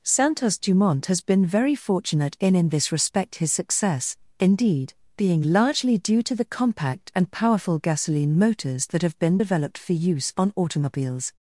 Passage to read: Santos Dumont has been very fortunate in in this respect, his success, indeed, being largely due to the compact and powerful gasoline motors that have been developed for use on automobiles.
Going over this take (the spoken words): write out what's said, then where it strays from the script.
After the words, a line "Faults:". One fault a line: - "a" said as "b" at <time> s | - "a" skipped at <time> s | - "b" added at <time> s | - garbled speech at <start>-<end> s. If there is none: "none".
Santos Dumont has been very fortunate in in this respect, his success, indeed, being largely due to the compact and powerful gasoline motors that have been developed for use on automobiles.
Faults:
none